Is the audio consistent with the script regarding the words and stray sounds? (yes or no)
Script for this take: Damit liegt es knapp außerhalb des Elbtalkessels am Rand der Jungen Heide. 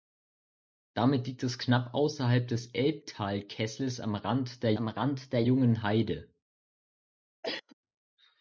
no